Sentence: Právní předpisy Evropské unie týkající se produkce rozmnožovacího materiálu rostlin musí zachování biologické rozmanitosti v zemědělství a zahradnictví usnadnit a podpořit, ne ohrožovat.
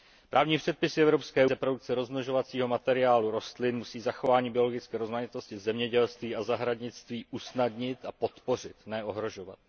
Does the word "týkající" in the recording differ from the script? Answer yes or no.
yes